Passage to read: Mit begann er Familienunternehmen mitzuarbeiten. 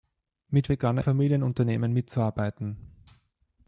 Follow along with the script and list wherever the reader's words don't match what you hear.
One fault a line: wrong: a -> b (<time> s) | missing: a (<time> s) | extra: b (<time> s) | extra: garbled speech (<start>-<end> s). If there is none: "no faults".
no faults